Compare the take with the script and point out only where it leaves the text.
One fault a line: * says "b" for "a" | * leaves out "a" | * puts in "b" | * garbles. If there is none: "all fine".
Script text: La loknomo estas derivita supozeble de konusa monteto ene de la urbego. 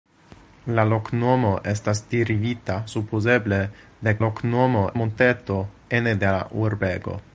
* says "loknomo" for "konusa"